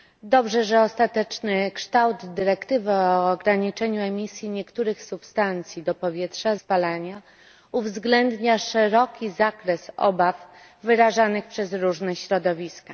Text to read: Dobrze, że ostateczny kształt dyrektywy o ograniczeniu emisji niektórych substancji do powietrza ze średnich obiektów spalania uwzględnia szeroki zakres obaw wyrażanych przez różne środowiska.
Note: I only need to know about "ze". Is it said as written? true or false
false